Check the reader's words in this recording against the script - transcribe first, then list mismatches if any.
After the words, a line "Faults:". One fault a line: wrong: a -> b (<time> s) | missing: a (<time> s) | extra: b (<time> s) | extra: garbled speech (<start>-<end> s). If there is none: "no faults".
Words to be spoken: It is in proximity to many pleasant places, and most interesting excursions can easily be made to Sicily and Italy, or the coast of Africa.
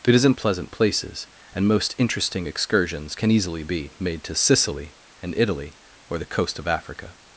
It is in pleasant places, and most interesting excursions can easily be made to Sicily and Italy, or the coast of Africa.
Faults:
missing: proximity to many (0.3 s)